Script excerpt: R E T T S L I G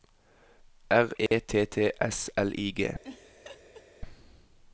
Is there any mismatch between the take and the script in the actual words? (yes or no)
no